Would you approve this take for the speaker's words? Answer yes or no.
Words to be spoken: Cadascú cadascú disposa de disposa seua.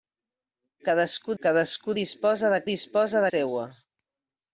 yes